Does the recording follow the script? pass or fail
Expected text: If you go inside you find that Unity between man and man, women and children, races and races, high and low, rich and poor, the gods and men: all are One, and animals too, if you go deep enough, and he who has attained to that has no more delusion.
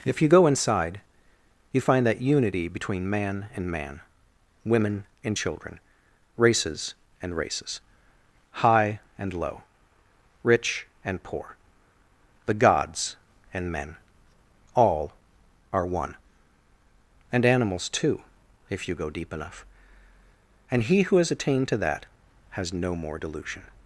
pass